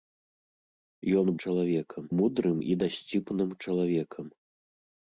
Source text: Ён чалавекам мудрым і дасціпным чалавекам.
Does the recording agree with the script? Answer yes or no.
yes